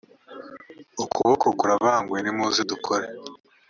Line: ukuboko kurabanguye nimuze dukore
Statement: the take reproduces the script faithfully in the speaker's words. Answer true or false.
true